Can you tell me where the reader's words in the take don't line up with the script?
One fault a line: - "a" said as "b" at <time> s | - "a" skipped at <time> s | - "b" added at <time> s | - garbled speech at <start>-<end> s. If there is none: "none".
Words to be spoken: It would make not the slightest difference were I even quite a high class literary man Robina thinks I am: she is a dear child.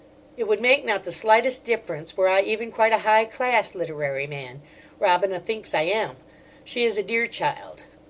none